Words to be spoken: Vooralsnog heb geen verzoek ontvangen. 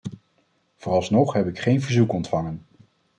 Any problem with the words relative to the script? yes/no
yes